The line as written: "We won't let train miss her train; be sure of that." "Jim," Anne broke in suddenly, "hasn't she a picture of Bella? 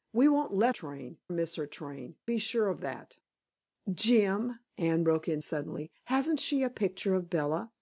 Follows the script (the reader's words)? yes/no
yes